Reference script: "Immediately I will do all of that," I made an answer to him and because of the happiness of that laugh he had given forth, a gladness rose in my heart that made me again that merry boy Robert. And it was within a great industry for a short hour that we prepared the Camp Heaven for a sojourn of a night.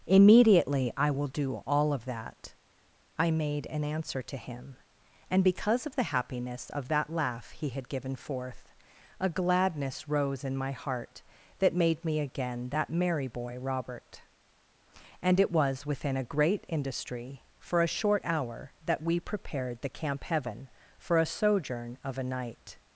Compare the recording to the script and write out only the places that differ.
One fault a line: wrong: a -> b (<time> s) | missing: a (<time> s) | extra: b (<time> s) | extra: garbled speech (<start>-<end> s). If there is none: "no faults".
no faults